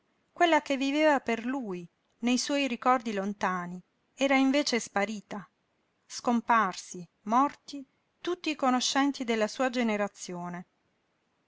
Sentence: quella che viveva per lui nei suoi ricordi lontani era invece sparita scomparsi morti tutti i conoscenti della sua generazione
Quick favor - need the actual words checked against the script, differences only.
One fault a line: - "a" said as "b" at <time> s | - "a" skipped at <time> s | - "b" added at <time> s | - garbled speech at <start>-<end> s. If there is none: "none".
none